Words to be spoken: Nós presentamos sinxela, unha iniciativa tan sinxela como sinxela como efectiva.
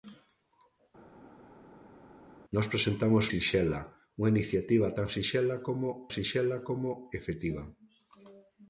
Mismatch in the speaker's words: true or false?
false